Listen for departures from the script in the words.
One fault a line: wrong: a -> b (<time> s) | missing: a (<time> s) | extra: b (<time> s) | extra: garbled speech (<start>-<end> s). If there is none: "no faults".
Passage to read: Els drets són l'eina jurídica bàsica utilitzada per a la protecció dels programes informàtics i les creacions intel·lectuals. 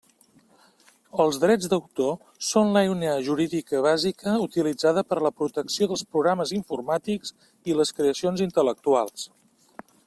extra: d'autor (1.7 s)